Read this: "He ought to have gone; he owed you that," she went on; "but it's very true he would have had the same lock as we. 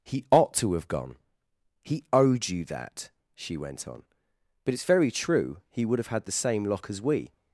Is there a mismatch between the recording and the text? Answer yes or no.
no